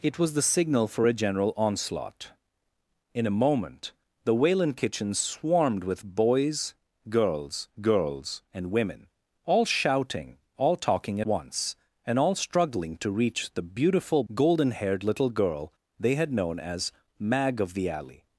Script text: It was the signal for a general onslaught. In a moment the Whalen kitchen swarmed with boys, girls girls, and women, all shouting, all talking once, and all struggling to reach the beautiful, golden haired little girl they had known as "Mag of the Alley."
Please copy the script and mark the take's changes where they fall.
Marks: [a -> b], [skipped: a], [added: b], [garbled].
It was the signal for a general onslaught. In a moment the Whalen kitchen swarmed with boys, girls girls, and women, all shouting, all talking once, and all struggling to reach the beautiful, golden haired little girl they had known as "Mag of the Alley."